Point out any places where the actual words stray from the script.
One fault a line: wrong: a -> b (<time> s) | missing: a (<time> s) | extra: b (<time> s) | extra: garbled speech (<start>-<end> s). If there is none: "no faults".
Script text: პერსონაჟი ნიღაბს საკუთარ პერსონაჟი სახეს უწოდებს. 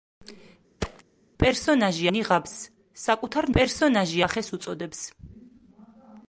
no faults